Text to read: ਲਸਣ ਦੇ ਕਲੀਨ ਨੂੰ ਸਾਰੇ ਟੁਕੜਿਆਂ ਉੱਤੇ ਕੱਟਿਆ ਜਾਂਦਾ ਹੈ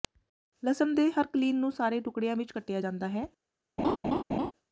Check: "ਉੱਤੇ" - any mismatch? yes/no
yes